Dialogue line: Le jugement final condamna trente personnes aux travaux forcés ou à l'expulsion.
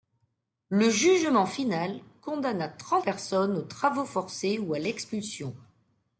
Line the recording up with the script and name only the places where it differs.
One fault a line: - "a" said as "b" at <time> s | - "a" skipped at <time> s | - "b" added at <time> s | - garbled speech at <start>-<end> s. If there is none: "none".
none